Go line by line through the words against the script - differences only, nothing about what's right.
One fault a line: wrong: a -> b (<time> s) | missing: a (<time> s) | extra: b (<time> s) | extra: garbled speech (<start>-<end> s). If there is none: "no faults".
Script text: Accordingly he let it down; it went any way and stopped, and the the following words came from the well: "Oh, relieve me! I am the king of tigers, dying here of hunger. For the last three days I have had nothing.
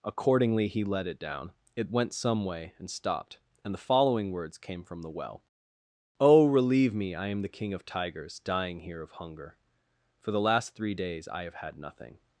wrong: any -> some (2.1 s)
missing: the (3.9 s)